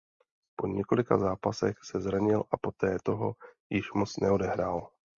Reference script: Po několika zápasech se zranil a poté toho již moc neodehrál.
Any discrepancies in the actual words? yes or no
no